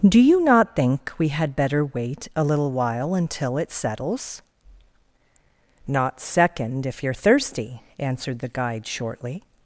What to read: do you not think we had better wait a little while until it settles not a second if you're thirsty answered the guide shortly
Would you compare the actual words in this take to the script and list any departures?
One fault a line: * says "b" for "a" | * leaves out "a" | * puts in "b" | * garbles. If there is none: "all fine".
* leaves out "a"